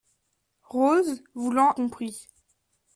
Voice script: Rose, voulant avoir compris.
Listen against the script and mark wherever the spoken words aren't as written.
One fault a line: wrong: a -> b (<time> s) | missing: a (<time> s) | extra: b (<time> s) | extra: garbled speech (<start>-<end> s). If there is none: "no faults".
missing: avoir (1.7 s)